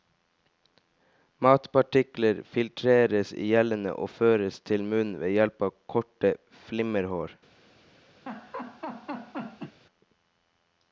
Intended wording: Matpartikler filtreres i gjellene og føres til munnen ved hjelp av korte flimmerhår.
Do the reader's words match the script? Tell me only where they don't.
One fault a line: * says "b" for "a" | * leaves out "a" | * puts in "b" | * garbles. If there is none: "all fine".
all fine